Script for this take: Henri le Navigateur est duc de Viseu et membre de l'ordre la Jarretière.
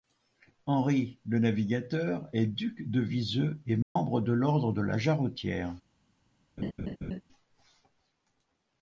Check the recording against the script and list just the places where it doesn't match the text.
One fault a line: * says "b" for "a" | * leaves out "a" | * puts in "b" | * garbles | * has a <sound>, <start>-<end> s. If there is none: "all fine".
* has a dropout, 3.8-4.0 s
* puts in "de"
* has a laugh, 6.6-7.2 s